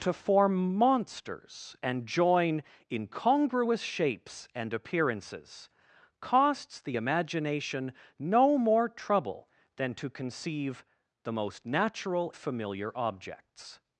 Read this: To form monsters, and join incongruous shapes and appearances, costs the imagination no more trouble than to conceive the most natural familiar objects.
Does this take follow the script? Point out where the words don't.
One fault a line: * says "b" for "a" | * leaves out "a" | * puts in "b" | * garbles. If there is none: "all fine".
all fine